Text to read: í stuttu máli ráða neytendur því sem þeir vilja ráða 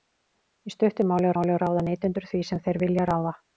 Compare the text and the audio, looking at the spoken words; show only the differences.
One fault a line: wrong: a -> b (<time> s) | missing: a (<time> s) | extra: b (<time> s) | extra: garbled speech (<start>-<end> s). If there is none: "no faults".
extra: máli (1.4 s)